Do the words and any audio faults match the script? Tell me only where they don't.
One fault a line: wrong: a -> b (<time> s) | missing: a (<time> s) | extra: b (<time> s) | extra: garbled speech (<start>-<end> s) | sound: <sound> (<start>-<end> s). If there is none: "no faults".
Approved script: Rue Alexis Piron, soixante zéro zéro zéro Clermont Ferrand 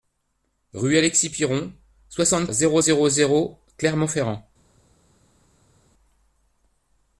no faults